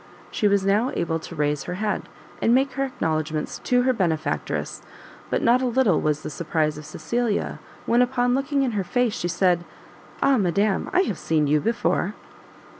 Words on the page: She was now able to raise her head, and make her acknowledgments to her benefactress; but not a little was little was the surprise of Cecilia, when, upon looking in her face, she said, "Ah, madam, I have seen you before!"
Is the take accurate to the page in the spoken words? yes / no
no